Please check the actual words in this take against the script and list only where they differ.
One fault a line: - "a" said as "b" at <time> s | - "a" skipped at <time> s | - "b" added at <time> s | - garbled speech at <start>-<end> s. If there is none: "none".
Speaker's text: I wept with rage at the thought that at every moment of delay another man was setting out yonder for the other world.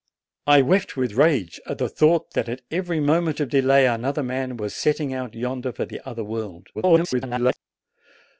- garbled speech at 6.7-7.6 s